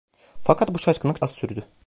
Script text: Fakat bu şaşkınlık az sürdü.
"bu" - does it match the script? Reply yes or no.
yes